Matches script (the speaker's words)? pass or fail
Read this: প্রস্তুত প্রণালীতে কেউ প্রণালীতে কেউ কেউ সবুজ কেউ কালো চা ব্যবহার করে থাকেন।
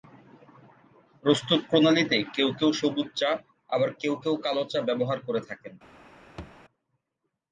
fail